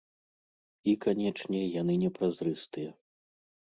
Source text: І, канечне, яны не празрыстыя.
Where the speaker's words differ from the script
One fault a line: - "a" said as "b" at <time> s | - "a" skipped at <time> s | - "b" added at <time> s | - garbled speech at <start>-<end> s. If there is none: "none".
none